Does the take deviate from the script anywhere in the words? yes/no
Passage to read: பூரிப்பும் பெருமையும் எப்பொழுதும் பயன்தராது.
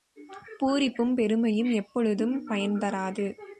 no